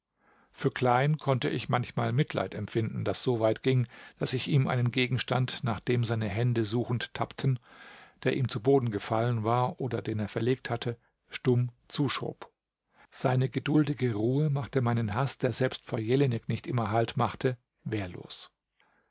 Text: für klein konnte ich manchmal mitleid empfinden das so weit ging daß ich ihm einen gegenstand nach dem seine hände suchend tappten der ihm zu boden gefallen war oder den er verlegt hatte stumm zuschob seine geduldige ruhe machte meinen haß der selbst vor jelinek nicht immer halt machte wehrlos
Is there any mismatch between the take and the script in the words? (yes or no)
no